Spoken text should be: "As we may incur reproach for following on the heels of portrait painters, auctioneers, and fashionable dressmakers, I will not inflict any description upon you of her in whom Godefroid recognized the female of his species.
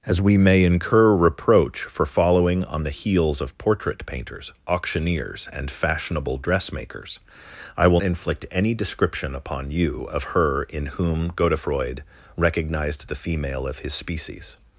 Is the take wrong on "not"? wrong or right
wrong